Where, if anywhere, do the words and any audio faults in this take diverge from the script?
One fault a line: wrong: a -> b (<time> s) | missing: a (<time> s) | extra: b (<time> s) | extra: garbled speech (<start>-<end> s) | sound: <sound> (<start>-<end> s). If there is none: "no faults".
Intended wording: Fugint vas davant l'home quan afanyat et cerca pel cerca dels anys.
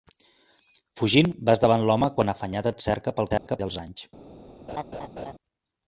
sound: dropout (3.4-3.5 s)
sound: laugh (4.7-5.3 s)